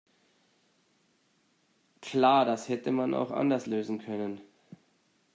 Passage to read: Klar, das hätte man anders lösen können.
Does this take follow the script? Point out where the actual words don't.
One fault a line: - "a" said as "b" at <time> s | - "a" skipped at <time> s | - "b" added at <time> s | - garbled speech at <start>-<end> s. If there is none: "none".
- "auch" added at 3.1 s